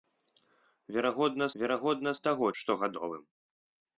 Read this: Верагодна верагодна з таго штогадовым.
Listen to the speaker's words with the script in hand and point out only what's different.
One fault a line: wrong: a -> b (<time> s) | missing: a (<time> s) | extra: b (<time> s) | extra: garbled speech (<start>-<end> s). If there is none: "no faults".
no faults